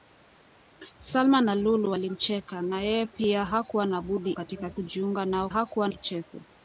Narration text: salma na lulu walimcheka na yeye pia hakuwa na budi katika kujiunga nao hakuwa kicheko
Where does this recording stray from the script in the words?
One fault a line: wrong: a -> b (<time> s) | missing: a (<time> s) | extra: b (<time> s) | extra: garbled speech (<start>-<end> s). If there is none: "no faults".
no faults